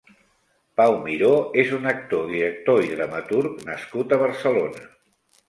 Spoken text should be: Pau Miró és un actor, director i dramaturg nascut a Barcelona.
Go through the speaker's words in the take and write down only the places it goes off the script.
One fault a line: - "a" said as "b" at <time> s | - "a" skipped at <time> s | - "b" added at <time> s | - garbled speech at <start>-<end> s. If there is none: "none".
none